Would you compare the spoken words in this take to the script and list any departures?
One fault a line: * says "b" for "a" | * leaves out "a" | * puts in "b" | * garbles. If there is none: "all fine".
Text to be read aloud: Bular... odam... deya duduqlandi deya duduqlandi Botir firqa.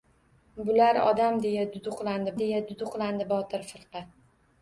all fine